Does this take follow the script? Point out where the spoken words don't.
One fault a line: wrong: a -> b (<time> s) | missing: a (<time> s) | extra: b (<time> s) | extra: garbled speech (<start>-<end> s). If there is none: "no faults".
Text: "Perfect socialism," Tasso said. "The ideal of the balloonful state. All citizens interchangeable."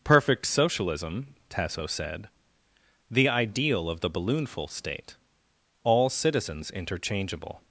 no faults